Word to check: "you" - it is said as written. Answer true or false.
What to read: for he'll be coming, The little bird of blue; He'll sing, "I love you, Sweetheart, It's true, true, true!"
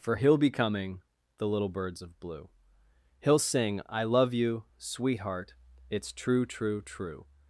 true